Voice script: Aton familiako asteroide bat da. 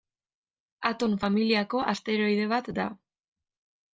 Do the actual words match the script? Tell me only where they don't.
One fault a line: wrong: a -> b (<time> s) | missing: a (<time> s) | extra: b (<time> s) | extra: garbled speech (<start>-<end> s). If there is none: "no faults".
no faults